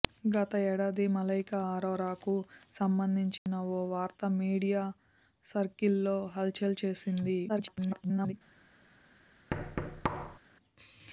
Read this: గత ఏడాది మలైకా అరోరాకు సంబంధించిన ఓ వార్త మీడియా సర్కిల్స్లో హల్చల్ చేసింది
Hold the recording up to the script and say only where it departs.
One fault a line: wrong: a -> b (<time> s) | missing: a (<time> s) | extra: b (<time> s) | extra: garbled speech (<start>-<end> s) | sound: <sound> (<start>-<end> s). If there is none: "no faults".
sound: dropout (3.4-3.5 s)
extra: garbled speech (7.5-8.3 s)
sound: thud (9.5-10.4 s)